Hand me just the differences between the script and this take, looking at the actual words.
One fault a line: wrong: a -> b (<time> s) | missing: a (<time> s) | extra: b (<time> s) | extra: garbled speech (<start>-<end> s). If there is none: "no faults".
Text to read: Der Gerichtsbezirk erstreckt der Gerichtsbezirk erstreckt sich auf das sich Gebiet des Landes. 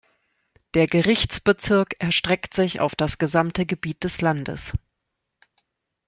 missing: der Gerichtsbezirk erstreckt (2.5 s)
wrong: sich -> gesamte (3.2 s)